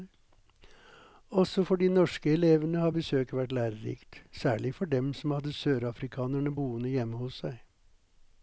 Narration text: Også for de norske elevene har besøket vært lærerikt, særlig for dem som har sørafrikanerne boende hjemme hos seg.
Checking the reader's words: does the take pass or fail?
fail